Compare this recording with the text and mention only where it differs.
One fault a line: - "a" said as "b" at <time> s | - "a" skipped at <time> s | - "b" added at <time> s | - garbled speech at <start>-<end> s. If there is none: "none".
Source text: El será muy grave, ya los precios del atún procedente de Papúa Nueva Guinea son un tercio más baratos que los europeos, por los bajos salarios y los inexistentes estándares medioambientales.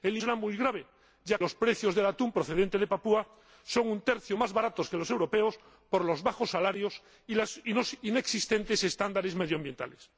none